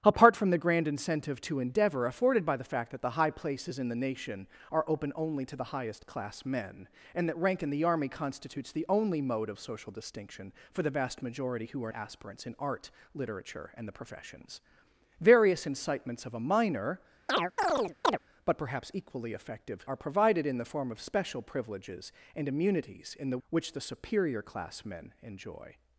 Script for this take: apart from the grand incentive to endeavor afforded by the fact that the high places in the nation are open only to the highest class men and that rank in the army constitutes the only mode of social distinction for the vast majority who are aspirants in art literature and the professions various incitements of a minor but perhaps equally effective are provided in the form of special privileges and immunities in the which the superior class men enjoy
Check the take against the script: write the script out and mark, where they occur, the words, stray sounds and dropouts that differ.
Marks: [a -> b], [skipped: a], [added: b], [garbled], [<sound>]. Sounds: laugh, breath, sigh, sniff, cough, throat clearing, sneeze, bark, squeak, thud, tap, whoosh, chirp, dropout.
apart from the grand incentive to endeavor afforded by the fact that the high places in the nation are open only to the highest class men and that rank in the army constitutes the only mode of social distinction for the vast majority who are aspirants in art literature and the professions various incitements of a minor [chirp] but perhaps equally effective are provided in the form of special privileges and immunities in the which the superior class men enjoy